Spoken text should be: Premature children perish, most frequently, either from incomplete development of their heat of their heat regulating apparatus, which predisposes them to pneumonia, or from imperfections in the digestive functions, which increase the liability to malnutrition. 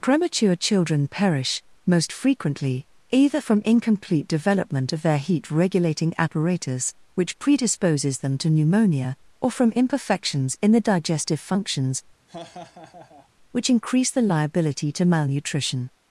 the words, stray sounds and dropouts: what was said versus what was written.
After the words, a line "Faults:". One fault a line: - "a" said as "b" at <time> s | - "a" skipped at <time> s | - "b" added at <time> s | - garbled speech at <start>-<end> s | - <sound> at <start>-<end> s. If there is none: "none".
Premature children perish, most frequently, either from incomplete development of their heat regulating apparatus, which predisposes them to pneumonia, or from imperfections in the digestive functions, which increase the liability to malnutrition.
Faults:
- "of their heat" skipped at 5.5 s
- laugh at 12.3-13.3 s